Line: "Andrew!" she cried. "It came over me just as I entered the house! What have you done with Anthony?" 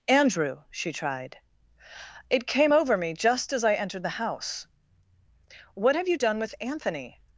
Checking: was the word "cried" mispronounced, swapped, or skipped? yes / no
yes